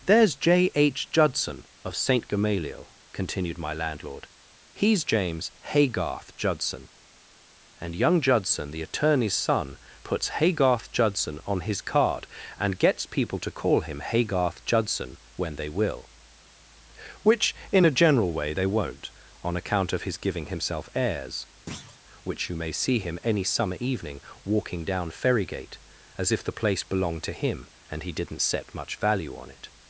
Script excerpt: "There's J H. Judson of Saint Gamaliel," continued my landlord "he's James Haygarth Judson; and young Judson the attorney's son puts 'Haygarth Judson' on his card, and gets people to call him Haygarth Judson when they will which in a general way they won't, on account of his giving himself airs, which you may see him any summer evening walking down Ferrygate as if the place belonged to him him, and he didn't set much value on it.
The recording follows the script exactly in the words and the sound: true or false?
false